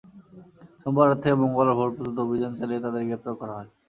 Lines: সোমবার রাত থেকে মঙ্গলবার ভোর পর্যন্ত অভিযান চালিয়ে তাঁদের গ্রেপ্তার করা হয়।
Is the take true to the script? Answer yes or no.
yes